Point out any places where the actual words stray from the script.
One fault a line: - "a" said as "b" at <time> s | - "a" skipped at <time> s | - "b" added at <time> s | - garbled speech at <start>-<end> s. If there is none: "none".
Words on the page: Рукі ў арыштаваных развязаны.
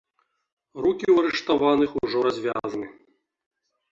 - "ужо" added at 2.0 s